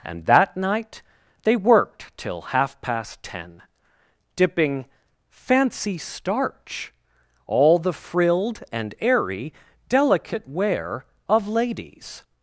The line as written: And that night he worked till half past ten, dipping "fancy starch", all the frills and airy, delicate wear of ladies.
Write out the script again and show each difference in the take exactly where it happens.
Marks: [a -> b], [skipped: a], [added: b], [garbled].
And that night [he -> they] worked till half past ten, dipping "fancy starch", all the [frills -> frilled] and airy, delicate wear of ladies.